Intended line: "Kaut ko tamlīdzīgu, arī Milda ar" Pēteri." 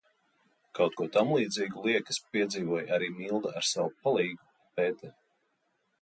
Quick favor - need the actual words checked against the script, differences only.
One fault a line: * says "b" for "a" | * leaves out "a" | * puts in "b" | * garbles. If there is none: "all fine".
* puts in "liekas piedzīvoja"
* puts in "savu palīgu"